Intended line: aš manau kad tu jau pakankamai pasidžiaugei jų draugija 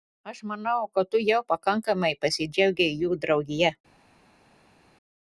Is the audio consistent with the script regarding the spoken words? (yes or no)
yes